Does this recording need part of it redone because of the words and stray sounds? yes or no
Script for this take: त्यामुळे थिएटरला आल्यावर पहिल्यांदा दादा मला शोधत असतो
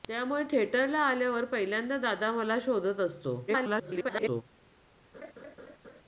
yes